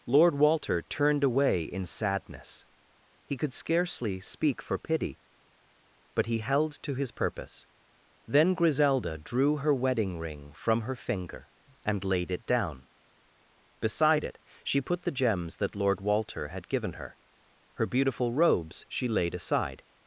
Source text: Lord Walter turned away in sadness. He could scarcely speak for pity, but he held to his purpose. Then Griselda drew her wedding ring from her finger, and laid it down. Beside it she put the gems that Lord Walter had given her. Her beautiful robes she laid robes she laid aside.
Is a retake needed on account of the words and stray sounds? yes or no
yes